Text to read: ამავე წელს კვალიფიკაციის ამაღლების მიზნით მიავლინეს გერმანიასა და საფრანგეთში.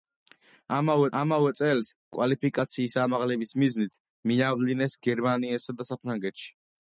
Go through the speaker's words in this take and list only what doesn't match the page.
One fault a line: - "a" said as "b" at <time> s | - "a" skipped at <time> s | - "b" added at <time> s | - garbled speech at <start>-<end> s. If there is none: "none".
- "ამავე" added at 1.2 s